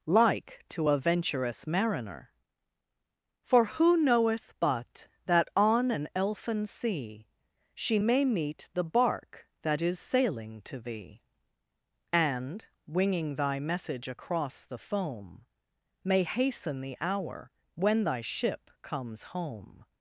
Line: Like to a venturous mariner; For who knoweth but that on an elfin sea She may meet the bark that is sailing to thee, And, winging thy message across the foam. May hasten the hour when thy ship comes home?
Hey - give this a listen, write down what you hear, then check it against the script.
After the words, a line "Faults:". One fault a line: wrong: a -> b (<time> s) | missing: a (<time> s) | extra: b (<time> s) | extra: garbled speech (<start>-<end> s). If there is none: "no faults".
Like to a venturous mariner; For who knoweth but that on an elfin sea She may meet the bark that is sailing to thee, And, winging thy message across the foam. May hasten the hour when thy ship comes home?
Faults:
no faults